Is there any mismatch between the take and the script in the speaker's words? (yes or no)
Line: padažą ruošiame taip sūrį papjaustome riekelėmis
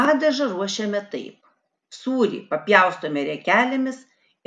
no